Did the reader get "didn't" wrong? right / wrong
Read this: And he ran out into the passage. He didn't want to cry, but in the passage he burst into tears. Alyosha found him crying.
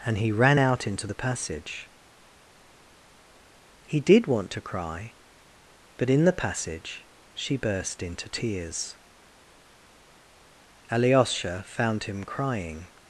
wrong